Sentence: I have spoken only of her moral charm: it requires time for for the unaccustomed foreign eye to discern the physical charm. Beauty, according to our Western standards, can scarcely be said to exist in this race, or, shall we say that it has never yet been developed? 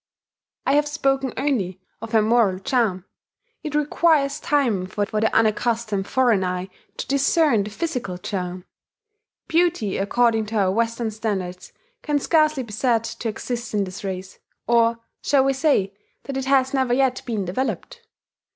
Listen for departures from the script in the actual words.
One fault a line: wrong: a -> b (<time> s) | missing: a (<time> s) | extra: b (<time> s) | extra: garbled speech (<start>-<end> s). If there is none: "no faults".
no faults